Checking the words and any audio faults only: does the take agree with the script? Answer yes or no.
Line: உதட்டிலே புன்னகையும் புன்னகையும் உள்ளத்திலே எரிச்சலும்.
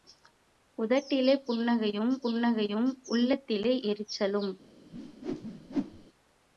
no